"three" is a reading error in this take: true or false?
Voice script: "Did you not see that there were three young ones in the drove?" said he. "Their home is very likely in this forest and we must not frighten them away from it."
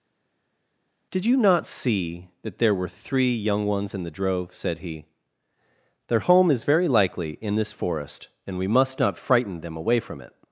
false